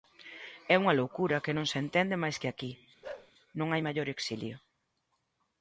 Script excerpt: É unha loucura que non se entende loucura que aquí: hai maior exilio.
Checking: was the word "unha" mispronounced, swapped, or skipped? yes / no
no